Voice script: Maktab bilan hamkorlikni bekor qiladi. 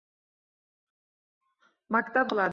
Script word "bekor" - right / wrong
wrong